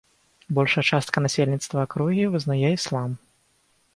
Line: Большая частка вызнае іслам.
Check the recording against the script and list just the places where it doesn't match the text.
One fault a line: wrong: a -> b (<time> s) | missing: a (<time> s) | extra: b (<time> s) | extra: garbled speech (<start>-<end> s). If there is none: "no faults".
extra: насельніцтва акругі (1.2 s)